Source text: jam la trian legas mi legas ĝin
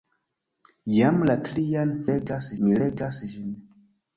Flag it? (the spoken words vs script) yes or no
no